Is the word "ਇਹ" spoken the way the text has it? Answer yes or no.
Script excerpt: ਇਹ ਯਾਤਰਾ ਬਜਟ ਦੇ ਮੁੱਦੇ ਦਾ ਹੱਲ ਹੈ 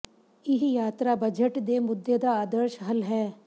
yes